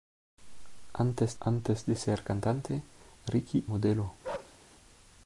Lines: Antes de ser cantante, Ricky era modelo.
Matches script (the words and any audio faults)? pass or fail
fail